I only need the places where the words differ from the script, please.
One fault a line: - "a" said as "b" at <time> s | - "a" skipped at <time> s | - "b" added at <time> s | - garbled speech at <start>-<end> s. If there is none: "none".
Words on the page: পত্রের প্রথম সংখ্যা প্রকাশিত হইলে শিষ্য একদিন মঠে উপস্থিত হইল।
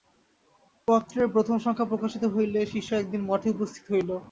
none